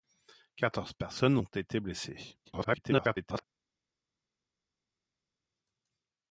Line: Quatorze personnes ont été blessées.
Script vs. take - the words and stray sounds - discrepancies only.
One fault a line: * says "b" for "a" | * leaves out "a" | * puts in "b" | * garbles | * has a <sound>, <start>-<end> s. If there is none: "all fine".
* garbles